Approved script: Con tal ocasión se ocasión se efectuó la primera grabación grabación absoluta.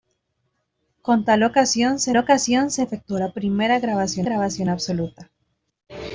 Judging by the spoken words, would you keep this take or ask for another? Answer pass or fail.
pass